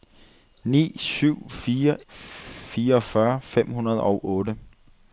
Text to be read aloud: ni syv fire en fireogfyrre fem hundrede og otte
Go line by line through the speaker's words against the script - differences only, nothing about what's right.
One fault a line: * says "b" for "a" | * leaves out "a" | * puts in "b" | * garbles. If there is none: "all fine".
* leaves out "en"